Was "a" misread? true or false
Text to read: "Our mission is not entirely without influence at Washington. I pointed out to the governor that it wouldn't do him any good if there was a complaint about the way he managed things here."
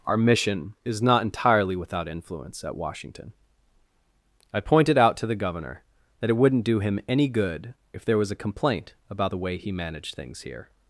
false